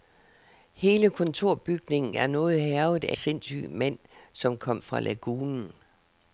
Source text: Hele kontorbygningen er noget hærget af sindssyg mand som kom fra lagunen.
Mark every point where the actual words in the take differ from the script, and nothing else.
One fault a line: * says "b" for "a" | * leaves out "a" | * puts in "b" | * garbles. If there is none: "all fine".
all fine